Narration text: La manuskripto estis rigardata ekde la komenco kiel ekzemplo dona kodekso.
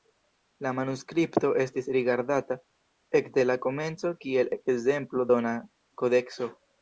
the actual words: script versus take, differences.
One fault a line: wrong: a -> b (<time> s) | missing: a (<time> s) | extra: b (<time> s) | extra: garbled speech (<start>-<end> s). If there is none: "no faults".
no faults